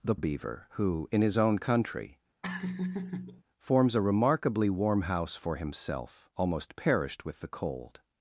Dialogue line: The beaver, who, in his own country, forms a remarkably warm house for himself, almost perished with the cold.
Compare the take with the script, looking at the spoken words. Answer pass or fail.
pass